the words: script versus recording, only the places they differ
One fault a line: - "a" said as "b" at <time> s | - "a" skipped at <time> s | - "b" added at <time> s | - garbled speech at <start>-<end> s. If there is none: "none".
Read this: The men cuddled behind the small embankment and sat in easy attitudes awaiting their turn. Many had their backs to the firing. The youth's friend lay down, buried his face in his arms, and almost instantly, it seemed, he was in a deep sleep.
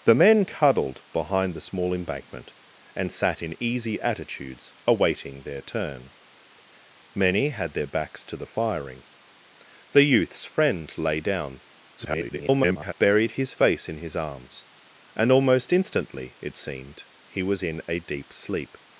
- garbled speech at 12.0-12.9 s